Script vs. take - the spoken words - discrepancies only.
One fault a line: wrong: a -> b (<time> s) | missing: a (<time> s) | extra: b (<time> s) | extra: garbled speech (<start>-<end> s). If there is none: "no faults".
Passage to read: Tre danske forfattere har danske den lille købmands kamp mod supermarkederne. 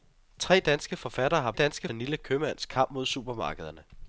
no faults